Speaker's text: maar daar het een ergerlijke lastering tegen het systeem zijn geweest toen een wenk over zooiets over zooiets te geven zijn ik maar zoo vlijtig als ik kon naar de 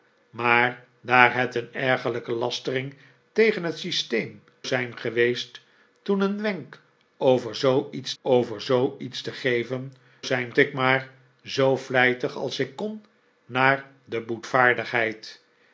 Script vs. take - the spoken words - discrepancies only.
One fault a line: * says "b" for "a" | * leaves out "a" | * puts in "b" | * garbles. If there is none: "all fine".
all fine